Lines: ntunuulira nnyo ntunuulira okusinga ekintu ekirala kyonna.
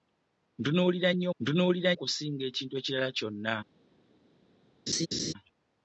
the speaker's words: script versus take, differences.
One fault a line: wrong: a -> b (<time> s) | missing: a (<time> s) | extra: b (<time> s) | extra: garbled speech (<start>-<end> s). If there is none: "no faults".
no faults